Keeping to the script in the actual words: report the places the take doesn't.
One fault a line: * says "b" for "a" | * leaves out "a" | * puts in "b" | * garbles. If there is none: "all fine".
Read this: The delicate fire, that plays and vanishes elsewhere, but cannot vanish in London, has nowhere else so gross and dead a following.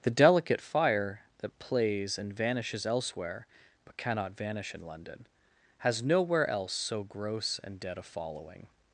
all fine